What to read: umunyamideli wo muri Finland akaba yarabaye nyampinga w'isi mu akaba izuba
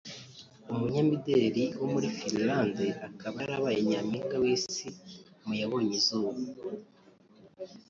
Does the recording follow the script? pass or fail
fail